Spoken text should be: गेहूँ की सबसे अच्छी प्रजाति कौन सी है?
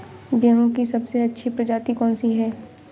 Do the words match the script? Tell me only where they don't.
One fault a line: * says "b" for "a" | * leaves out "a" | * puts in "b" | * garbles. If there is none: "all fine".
all fine